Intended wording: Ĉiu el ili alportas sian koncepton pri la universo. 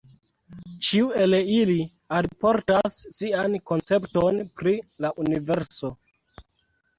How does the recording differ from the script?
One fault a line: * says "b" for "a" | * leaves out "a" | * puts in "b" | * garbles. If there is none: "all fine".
all fine